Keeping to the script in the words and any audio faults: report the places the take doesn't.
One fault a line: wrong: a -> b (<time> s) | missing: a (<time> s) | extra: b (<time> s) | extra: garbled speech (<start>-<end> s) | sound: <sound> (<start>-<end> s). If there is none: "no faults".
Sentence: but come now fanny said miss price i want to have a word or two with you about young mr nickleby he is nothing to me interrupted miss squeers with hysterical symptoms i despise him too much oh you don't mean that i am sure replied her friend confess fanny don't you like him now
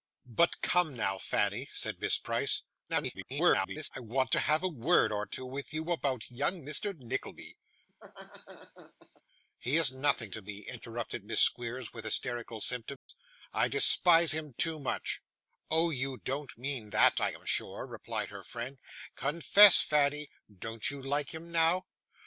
extra: garbled speech (2.9-3.9 s)
sound: laugh (7.9-9.2 s)
sound: dropout (13.0-13.1 s)